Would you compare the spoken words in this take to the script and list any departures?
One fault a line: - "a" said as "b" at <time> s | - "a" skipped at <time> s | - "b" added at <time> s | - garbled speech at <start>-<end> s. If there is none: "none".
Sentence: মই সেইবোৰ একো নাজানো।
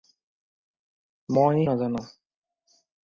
- "সেইবোৰ একো" skipped at 1.6 s